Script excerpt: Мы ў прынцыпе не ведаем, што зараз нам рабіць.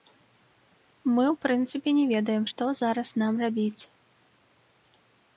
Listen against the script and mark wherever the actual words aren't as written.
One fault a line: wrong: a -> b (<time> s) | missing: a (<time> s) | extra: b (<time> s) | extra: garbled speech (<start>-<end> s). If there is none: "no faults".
no faults